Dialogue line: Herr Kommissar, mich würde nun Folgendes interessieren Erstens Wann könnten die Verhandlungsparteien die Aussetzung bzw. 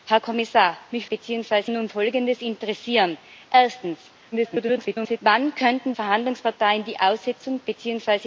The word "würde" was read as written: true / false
false